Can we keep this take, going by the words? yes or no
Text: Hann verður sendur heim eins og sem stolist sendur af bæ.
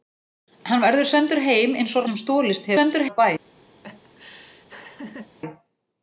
yes